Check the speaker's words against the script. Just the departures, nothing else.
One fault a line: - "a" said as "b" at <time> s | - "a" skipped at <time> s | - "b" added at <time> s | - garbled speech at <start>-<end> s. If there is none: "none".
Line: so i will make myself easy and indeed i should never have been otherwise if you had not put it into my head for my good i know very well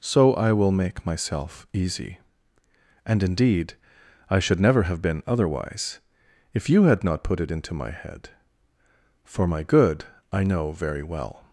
none